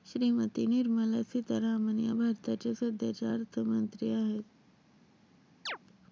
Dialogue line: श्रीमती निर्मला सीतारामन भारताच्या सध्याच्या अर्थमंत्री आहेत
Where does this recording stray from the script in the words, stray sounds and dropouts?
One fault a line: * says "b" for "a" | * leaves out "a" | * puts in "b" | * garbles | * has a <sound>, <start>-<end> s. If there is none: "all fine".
* puts in "या"
* has a chirp, 5.7-5.8 s